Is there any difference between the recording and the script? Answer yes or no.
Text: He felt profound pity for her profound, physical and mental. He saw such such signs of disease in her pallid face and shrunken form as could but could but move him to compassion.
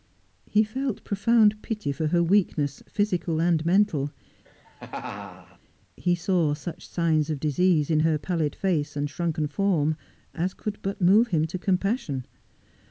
yes